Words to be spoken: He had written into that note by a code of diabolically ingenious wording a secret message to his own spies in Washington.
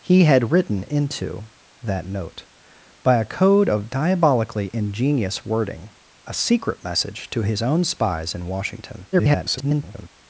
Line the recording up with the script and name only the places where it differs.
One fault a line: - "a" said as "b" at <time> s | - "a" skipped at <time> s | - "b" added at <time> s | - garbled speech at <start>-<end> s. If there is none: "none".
- garbled speech at 9.1-10.1 s